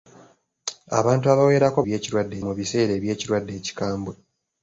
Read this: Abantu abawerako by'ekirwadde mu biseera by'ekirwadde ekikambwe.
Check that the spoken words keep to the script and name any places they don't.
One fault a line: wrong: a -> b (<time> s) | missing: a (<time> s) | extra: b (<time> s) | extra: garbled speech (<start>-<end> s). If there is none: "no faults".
no faults